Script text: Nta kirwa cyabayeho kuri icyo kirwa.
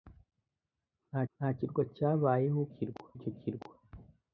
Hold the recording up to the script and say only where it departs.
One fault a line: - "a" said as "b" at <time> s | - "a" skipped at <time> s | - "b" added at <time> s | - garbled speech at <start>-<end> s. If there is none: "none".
- "nta" added at 1.3 s
- "kuri" said as "kirwa" at 2.7 s